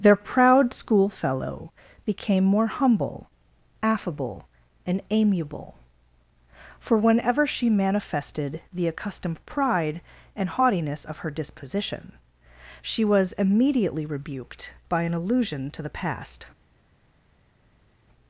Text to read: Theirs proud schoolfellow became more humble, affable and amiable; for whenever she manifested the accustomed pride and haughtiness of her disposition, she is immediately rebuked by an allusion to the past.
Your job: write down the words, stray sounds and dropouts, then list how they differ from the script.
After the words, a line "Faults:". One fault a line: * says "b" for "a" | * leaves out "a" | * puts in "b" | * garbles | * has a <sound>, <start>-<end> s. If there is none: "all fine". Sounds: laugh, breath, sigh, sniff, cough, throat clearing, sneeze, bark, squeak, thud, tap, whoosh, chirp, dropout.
Their proud schoolfellow became more humble, affable and amiable; for whenever she manifested the accustomed pride and haughtiness of her disposition, she was immediately rebuked by an allusion to the past.
Faults:
* says "Their" for "Theirs"
* says "was" for "is"